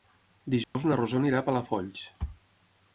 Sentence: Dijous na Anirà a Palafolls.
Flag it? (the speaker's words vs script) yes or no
yes